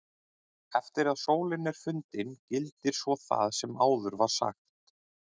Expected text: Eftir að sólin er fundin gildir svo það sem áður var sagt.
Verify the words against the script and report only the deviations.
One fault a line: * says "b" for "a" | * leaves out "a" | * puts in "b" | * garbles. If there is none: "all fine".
all fine